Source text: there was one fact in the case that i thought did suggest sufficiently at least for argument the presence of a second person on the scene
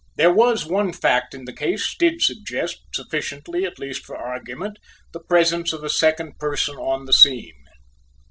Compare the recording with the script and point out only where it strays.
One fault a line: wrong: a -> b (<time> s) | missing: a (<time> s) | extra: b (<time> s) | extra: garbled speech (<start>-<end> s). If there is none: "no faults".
missing: that i thought (2.0 s)